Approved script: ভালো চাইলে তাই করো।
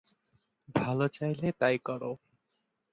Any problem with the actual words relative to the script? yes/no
no